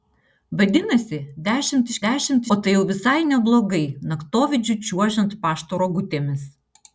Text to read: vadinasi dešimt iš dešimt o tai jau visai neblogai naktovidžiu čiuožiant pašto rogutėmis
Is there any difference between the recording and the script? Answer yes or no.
no